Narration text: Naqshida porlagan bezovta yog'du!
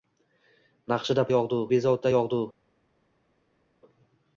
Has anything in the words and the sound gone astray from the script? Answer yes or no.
yes